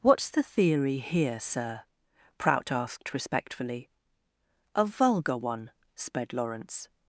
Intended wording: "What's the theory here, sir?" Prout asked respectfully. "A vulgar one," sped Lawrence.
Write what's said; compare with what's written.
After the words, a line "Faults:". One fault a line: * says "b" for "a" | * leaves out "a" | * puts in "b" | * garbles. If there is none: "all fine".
"What's the theory here, sir?" Prout asked respectfully. "A vulgar one," sped Lawrence.
Faults:
all fine